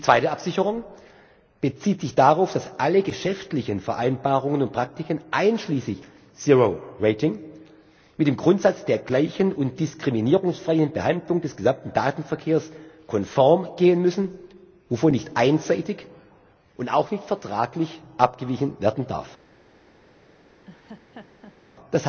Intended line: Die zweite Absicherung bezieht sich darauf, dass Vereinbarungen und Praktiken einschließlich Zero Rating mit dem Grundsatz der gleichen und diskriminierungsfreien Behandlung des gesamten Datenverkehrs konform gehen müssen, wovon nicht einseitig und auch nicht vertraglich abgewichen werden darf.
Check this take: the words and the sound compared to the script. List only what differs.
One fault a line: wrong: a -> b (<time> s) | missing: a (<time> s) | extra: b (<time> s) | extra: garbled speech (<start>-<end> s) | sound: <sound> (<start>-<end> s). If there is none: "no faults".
extra: alle geschäftlichen (2.8 s)
sound: laugh (20.7-21.6 s)